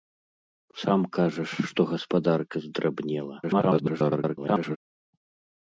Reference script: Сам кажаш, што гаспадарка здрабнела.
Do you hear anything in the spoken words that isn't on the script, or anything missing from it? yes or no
yes